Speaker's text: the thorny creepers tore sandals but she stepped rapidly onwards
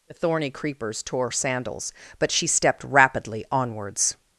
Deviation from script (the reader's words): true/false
false